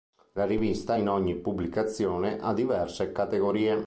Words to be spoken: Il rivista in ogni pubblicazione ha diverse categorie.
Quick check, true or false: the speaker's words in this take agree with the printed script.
false